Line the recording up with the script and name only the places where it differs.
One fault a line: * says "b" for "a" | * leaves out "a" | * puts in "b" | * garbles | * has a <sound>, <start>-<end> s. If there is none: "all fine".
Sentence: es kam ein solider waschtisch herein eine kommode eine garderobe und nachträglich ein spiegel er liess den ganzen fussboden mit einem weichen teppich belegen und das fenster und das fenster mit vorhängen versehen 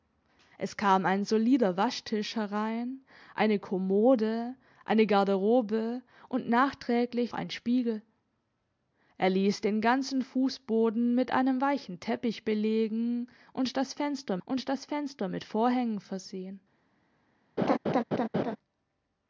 * has a laugh, 17.6-18.6 s